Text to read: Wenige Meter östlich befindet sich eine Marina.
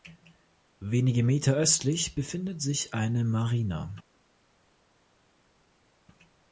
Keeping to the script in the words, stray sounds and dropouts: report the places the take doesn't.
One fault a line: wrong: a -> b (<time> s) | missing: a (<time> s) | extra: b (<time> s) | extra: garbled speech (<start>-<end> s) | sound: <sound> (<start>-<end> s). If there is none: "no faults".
no faults